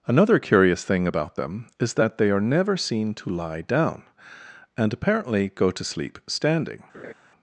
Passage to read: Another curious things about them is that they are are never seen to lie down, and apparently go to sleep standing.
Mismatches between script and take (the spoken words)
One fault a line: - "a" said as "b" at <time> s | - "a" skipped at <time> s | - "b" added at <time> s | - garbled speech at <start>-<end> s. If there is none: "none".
- "things" said as "thing" at 0.8 s
- "are" skipped at 2.4 s